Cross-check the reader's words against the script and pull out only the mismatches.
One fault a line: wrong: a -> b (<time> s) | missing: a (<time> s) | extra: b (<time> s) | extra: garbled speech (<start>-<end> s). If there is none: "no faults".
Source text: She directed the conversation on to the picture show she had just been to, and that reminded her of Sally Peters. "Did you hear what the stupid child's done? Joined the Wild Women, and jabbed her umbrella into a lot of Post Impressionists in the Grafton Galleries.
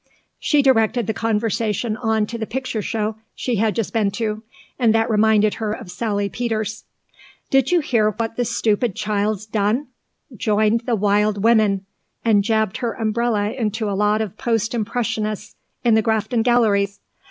no faults